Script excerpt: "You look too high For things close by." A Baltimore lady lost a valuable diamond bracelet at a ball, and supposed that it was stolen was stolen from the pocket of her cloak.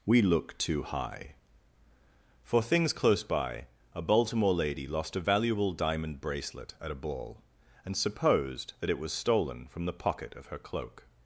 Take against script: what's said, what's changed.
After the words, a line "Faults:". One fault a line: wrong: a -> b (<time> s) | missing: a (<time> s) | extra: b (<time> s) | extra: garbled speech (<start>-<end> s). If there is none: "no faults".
"We look too high For things close by." A Baltimore lady lost a valuable diamond bracelet at a ball, and supposed that it was stolen from the pocket of her cloak.
Faults:
wrong: You -> We (0.0 s)
missing: was stolen (9.7 s)